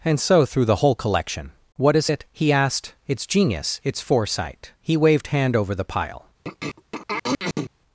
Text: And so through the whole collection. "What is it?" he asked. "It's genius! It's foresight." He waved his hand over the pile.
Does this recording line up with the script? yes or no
no